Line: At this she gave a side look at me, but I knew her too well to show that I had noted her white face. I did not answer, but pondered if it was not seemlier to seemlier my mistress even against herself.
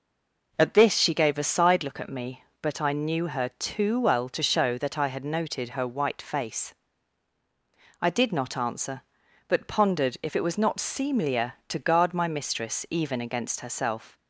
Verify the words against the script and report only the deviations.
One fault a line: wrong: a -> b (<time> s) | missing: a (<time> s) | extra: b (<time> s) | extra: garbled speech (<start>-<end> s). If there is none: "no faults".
wrong: seemlier -> guard (11.8 s)